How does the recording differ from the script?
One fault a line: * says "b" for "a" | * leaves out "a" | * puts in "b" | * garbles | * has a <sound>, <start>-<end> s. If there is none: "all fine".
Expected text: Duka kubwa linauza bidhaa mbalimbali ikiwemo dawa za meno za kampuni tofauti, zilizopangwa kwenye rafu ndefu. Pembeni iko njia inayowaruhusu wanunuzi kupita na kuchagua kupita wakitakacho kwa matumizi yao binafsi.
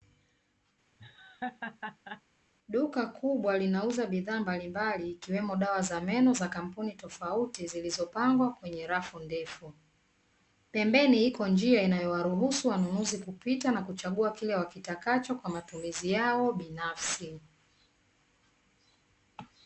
* has a laugh, 1.0-2.2 s
* says "kile" for "kupita"